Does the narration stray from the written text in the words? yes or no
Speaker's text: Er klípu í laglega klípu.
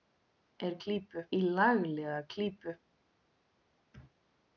no